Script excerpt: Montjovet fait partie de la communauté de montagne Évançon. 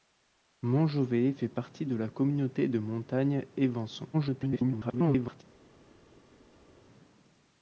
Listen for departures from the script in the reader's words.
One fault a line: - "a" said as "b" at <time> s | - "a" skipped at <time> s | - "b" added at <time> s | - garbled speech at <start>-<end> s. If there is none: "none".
- garbled speech at 4.1-5.4 s